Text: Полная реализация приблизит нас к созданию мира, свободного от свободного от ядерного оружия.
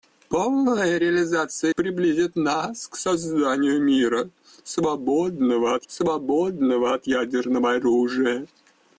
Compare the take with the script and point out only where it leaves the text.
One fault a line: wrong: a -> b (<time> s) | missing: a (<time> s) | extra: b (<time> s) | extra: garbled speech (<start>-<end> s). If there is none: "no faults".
no faults